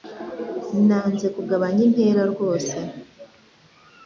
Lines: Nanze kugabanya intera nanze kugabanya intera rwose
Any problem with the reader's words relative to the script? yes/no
yes